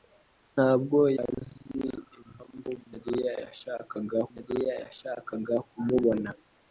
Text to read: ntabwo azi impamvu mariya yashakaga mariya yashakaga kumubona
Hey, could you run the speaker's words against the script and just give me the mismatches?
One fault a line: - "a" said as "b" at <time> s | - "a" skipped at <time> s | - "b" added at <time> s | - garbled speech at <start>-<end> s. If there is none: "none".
none